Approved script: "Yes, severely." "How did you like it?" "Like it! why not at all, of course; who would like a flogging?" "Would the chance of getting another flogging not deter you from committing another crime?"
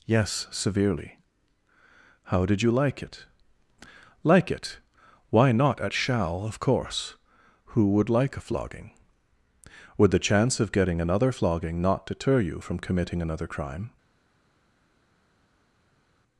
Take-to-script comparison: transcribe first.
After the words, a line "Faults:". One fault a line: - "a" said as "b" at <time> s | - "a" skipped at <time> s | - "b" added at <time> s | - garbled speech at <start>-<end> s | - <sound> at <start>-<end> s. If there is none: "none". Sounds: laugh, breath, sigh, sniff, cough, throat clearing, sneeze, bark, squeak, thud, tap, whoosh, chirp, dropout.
"Yes, severely." "How did you like it?" "Like it! why not at shall, of course; who would like a flogging?" "Would the chance of getting another flogging not deter you from committing another crime?"
Faults:
- "all" said as "shall" at 5.9 s